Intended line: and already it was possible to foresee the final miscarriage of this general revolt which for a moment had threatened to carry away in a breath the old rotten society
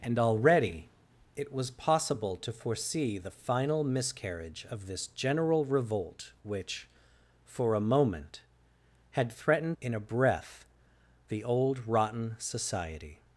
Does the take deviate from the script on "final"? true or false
false